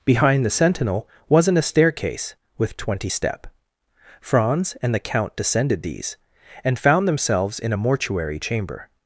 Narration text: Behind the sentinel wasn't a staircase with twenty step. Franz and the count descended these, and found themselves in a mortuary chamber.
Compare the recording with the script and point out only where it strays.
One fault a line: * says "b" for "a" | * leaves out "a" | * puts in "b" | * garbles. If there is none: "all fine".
all fine